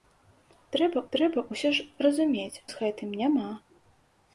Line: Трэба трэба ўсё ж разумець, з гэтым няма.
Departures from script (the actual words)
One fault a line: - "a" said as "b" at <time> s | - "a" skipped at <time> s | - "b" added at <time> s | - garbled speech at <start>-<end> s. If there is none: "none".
none